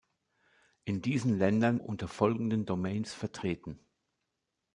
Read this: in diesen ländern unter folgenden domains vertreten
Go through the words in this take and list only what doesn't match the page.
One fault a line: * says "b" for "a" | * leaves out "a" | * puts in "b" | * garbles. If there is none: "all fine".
all fine